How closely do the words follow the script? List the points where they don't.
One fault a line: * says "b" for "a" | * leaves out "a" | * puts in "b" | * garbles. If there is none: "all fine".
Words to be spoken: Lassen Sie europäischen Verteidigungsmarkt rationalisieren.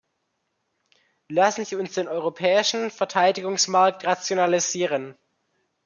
* puts in "uns den"